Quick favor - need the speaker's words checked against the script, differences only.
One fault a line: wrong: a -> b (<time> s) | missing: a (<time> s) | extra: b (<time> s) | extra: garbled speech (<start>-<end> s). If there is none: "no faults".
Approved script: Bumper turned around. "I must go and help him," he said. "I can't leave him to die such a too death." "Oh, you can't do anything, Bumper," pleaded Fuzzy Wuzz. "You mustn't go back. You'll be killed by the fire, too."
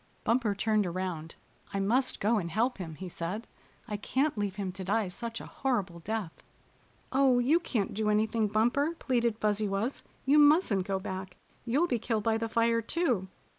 wrong: too -> horrible (5.5 s)